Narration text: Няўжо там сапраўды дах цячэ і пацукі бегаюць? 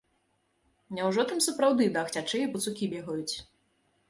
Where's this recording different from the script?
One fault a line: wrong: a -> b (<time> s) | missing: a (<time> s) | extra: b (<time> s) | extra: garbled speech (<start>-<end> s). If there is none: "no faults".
no faults